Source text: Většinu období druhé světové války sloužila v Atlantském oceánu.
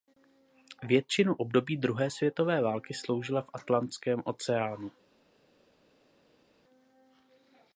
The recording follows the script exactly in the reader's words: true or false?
true